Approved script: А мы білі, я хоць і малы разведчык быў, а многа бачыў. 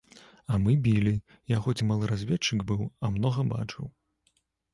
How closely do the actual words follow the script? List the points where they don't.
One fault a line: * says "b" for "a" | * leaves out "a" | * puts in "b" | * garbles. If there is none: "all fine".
all fine